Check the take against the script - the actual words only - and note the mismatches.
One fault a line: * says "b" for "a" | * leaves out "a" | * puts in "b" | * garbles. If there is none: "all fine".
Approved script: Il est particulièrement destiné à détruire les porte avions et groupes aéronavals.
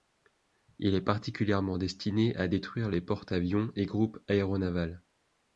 all fine